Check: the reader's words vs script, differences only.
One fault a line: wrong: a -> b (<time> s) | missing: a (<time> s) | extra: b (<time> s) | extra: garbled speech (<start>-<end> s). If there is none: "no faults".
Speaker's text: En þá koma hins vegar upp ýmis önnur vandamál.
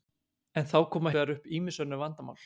missing: hins (1.1 s)